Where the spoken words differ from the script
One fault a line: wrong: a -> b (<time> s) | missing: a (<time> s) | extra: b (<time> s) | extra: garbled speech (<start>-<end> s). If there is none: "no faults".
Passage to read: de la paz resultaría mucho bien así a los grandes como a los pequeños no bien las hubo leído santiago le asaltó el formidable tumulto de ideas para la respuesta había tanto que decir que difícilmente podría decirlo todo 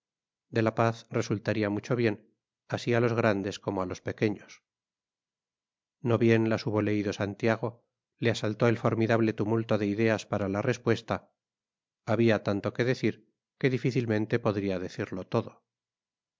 no faults